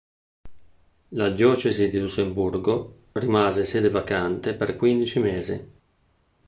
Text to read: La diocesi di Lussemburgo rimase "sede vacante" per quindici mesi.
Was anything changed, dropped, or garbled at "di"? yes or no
no